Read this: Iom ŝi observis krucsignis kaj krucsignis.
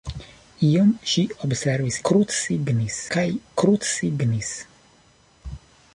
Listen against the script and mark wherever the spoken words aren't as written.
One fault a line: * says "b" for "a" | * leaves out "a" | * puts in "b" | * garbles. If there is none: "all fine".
all fine